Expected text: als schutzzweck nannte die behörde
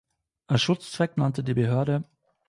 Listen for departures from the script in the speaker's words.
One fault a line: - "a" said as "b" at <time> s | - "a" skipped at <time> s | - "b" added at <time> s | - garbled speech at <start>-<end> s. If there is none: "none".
none